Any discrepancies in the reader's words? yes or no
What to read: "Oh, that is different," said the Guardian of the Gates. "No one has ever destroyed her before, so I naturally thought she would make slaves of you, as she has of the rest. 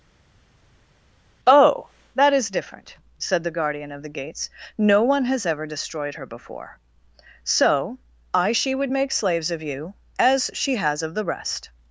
yes